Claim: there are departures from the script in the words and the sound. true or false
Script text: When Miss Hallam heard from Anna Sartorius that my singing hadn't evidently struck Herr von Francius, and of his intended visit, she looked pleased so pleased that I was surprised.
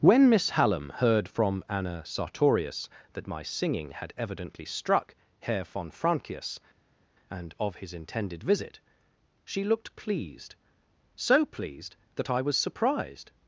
true